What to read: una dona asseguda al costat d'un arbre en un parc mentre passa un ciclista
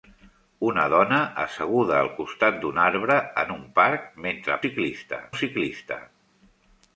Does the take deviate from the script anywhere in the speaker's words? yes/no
yes